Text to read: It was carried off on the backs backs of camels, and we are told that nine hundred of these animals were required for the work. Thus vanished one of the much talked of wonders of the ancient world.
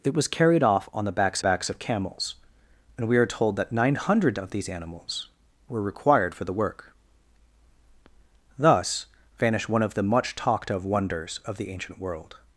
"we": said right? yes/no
yes